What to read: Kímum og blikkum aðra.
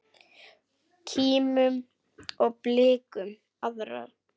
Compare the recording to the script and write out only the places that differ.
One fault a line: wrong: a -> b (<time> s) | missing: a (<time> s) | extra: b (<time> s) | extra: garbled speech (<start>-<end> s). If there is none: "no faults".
no faults